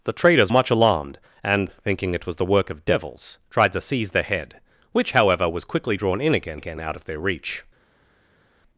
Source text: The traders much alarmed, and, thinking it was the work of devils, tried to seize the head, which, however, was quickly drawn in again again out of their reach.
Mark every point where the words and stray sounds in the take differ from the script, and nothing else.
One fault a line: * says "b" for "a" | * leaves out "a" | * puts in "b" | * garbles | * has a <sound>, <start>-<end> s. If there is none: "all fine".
all fine